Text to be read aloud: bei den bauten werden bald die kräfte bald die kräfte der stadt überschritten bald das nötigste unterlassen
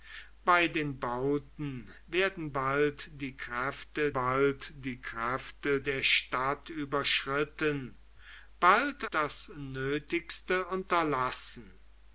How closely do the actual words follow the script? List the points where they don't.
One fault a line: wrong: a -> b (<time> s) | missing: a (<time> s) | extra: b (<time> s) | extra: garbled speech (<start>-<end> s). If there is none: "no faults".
no faults